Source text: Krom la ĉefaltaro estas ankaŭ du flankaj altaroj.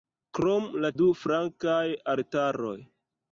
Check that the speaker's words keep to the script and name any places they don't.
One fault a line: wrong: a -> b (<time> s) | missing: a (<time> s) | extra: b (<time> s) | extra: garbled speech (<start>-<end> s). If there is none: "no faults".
missing: ĉefaltaro estas ankaŭ (0.9 s)